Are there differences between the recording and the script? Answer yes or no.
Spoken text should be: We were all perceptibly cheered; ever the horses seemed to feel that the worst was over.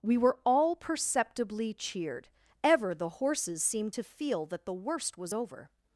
no